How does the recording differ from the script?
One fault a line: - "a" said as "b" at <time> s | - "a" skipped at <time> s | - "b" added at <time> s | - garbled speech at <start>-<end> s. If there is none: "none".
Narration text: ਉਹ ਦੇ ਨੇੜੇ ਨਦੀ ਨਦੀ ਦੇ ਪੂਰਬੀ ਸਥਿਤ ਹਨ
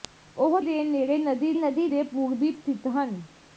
none